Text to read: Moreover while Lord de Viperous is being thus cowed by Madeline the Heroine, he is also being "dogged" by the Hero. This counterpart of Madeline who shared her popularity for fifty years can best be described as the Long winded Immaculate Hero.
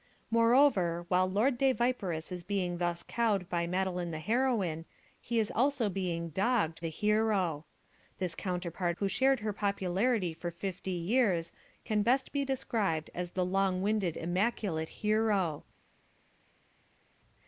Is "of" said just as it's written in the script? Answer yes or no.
no